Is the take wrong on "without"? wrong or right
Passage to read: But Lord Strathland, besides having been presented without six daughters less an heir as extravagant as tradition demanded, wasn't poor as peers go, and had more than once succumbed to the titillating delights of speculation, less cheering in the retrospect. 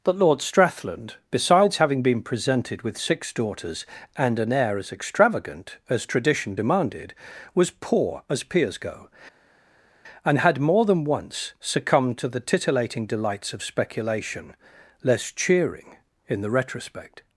wrong